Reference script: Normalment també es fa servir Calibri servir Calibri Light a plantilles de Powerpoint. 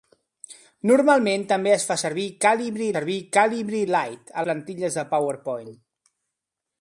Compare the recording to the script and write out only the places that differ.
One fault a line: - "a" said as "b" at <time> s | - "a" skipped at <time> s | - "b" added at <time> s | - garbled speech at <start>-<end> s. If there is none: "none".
none